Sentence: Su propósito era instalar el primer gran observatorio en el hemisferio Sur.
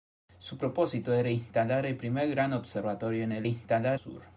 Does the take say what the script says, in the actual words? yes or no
no